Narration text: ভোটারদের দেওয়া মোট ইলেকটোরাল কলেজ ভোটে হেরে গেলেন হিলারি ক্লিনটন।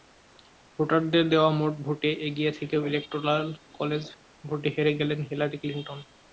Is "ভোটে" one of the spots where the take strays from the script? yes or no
no